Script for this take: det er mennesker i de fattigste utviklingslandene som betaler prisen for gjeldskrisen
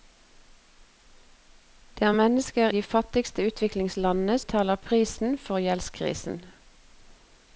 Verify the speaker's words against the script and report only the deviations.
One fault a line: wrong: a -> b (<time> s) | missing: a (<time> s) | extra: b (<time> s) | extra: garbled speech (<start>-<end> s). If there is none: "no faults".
missing: i (2.7 s)
missing: som (4.4 s)